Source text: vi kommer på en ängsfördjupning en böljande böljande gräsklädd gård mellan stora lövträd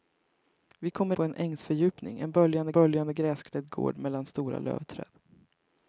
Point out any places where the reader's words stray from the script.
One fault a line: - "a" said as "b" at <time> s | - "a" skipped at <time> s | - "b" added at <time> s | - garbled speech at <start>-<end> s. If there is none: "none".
none